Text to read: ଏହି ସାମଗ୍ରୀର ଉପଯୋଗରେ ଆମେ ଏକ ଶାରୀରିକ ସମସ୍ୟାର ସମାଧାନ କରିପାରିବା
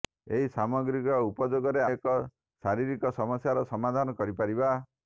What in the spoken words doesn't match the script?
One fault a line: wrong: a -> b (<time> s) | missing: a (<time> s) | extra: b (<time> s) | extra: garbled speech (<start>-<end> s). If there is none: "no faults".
missing: ଆମେ (1.8 s)